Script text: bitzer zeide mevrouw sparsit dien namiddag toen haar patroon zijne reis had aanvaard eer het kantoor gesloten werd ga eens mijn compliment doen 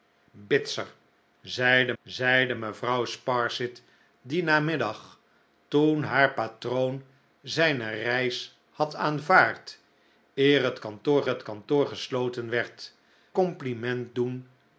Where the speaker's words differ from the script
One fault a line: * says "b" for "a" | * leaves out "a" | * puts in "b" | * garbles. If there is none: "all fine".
* puts in "zeide"
* puts in "het kantoor"
* leaves out "ga eens mijn"